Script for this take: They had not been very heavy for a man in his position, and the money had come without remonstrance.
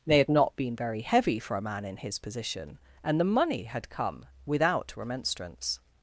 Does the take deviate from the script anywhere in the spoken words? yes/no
no